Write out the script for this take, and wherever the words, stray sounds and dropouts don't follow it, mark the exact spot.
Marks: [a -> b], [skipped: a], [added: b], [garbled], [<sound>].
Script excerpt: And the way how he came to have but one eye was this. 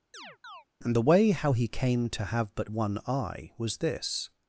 [chirp] And the way how he came to have but one eye was this.